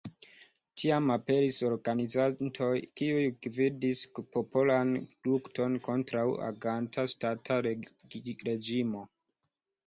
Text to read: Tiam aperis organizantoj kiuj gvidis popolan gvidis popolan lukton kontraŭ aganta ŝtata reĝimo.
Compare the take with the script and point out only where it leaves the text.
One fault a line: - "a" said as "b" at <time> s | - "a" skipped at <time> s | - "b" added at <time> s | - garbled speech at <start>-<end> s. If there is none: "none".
- "gvidis popolan" skipped at 5.0 s